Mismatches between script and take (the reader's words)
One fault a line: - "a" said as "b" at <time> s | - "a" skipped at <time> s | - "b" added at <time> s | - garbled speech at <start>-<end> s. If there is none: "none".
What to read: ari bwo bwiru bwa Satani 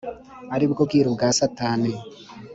none